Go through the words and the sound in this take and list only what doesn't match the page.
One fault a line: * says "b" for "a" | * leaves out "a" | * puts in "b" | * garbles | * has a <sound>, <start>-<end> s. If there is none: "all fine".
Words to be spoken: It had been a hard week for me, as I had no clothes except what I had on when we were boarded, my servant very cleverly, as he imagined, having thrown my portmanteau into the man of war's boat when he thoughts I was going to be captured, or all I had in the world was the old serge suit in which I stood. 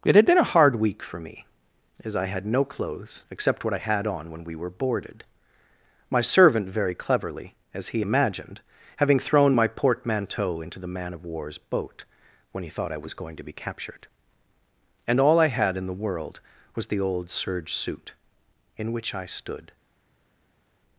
* says "thought" for "thoughts"
* says "and" for "or"